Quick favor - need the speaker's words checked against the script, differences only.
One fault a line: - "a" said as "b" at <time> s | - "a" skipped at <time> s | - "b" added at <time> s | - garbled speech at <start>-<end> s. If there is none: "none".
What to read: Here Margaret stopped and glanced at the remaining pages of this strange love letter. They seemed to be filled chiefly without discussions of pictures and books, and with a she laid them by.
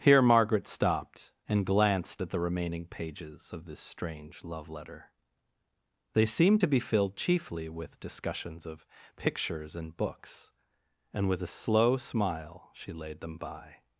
- "without" said as "with" at 7.7 s
- "slow smile" added at 11.5 s